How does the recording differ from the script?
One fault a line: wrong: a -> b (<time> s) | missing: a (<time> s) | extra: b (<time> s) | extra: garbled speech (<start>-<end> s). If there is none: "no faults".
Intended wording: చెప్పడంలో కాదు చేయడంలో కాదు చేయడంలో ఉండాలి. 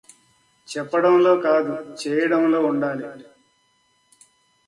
missing: కాదు చేయడంలో (2.6 s)